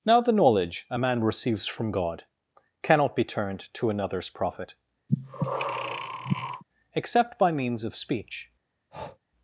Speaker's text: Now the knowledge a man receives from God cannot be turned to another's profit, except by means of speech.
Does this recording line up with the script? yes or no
yes